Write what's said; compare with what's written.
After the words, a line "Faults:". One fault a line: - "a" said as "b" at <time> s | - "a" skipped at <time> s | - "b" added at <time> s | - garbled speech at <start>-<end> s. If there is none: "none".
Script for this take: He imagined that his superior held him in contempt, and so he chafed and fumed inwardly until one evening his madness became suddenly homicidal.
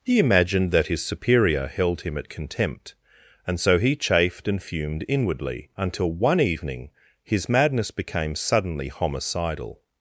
He imagined that his superior held him at contempt, and so he chafed and fumed inwardly until one evening his madness became suddenly homicidal.
Faults:
- "in" said as "at" at 2.2 s